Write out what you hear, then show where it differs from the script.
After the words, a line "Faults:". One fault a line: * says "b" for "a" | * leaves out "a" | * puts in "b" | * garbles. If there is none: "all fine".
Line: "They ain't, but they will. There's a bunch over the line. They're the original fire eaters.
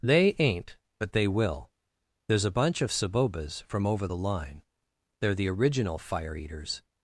"They ain't, but they will. There's a bunch of Sabobas from over the line. They're the original fire eaters.
Faults:
* puts in "of Sabobas from"